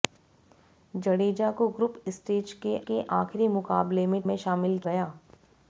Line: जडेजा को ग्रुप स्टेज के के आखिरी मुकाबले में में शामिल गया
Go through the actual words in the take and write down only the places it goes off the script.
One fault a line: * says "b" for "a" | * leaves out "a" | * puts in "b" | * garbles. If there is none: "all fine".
all fine